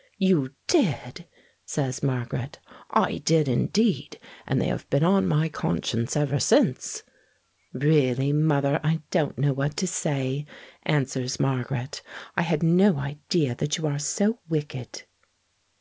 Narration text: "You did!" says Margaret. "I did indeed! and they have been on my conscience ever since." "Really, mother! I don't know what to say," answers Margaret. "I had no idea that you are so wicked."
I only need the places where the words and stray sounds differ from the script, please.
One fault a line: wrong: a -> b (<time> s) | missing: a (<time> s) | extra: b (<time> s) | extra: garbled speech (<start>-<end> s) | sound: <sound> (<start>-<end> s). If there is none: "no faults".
no faults